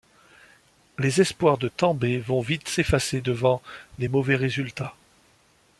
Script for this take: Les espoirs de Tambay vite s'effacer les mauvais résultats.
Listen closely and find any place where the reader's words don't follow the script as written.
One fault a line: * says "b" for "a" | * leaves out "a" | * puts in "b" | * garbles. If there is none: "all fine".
* puts in "vont"
* puts in "devant"